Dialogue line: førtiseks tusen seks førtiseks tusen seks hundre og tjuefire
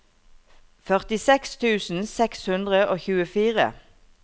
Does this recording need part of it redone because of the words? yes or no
yes